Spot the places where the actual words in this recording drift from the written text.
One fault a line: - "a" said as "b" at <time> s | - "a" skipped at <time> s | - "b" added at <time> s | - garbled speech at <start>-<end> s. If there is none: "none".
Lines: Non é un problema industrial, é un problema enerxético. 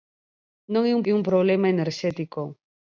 - "problema industrial" skipped at 1.0 s